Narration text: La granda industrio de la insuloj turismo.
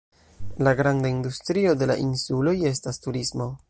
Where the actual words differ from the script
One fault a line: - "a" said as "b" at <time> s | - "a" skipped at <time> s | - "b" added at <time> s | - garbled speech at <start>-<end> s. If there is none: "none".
- "estas" added at 2.8 s